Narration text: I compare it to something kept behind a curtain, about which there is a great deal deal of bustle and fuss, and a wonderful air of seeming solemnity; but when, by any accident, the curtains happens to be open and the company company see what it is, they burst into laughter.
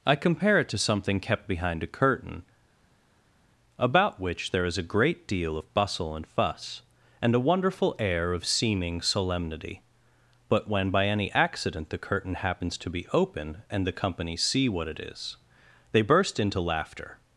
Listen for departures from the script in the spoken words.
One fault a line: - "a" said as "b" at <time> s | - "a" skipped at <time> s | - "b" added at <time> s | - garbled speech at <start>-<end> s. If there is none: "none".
- "deal" skipped at 5.6 s
- "curtains" said as "curtain" at 12.0 s
- "company" skipped at 14.3 s